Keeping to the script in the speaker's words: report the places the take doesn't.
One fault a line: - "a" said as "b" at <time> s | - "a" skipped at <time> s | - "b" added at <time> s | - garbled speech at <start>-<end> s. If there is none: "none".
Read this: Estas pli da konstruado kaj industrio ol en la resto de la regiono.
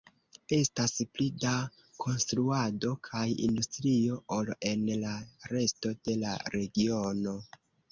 none